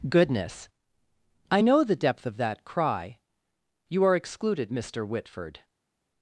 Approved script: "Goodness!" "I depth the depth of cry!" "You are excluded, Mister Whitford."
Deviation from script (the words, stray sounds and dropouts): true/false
true